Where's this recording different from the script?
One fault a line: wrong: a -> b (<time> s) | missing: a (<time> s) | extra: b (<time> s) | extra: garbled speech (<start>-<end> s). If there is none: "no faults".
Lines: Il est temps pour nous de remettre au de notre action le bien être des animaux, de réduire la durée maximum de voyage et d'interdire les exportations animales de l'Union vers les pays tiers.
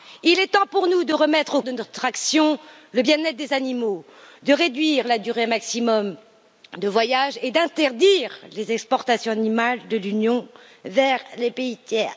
no faults